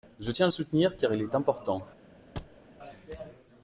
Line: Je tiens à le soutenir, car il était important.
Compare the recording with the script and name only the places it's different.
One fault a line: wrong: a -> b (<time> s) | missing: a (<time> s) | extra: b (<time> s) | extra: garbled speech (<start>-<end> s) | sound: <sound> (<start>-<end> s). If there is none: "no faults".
wrong: était -> est (1.2 s)
sound: thud (2.4-2.6 s)